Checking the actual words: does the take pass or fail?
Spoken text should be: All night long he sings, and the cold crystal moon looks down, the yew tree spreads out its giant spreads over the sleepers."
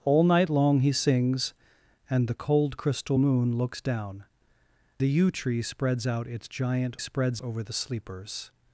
pass